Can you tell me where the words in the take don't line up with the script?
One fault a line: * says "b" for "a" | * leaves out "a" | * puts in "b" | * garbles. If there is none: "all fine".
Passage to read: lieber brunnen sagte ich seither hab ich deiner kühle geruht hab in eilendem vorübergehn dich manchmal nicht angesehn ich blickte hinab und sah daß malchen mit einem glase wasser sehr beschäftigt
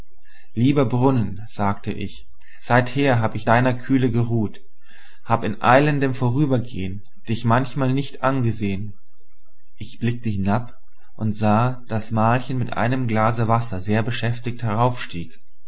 all fine